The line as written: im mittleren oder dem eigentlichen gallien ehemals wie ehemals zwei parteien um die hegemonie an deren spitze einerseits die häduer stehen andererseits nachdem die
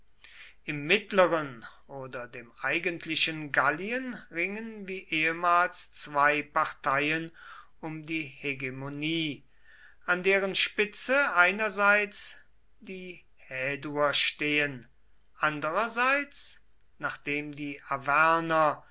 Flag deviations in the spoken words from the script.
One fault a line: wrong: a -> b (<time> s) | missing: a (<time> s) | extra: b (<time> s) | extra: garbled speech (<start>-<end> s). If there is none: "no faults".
wrong: ehemals -> ringen (4.3 s)